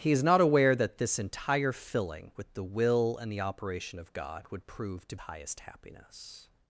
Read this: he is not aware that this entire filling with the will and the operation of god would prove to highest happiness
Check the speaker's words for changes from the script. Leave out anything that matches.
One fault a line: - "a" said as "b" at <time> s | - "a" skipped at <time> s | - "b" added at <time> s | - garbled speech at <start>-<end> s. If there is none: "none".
none